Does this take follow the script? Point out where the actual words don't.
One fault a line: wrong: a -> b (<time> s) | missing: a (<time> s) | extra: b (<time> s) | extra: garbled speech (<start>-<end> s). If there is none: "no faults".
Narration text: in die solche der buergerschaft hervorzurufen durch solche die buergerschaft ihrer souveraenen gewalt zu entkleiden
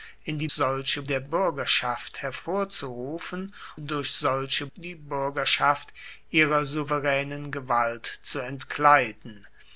no faults